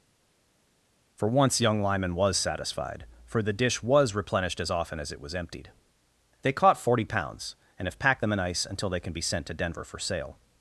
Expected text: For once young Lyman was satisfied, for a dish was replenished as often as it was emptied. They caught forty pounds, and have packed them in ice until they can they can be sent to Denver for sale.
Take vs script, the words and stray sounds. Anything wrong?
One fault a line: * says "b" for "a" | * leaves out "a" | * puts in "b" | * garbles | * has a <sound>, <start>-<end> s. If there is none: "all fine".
* says "the" for "a"
* leaves out "they can"